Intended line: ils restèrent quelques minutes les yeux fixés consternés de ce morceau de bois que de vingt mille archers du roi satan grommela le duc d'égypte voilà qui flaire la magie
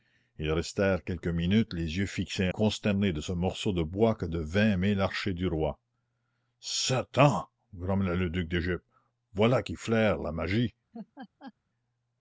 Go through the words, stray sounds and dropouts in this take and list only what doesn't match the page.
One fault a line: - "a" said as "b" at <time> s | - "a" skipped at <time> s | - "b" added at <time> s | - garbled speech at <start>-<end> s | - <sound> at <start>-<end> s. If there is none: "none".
- laugh at 10.9-11.5 s